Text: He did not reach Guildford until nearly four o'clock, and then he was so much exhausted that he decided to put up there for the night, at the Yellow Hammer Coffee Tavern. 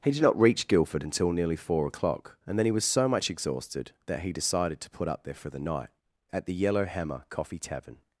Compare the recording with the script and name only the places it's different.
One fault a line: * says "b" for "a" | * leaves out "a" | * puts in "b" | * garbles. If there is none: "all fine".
all fine